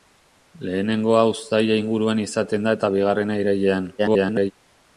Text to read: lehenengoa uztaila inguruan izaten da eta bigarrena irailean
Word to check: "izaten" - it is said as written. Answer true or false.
true